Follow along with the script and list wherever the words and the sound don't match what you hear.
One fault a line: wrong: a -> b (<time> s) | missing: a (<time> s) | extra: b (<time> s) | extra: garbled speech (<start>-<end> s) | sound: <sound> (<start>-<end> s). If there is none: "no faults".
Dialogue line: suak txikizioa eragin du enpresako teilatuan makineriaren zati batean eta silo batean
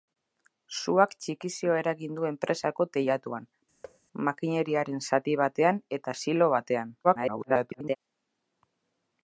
sound: thud (3.8-4.0 s)
extra: garbled speech (7.0-8.0 s)